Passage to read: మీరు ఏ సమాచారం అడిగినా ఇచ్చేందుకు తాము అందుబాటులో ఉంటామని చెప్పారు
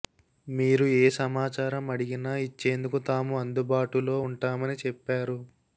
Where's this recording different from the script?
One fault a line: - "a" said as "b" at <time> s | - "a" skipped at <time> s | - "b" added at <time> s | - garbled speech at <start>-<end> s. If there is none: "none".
none